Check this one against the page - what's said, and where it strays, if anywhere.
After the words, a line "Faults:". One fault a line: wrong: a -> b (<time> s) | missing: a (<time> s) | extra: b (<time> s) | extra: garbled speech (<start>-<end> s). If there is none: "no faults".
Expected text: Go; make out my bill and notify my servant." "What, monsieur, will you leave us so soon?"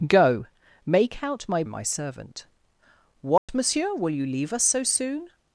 Go; make out my my servant." "What, monsieur, will you leave us so soon?"
Faults:
missing: bill and notify (1.6 s)